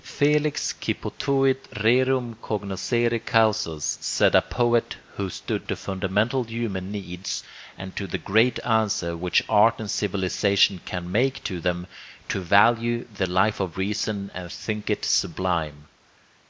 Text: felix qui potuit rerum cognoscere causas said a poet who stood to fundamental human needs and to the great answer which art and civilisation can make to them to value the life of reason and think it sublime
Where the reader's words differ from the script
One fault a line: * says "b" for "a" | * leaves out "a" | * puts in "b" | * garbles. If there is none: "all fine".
all fine